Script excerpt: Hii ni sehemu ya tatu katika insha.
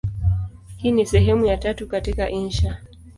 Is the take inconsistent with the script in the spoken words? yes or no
no